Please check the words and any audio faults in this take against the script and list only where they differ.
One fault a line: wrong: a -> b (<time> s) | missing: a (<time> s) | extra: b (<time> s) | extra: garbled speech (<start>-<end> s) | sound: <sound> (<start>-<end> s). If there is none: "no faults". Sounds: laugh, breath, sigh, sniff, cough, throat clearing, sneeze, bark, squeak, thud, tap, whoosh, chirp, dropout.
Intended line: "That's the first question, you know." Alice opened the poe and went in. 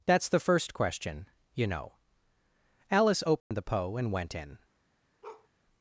sound: dropout (3.4-3.5 s)
sound: bark (5.2-5.5 s)